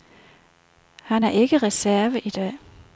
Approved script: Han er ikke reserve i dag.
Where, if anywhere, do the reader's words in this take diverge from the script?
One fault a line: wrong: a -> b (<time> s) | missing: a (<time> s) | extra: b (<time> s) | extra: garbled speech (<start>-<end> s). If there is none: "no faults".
no faults